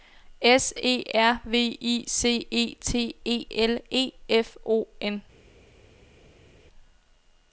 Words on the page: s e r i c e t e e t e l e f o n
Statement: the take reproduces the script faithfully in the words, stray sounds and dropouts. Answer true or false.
false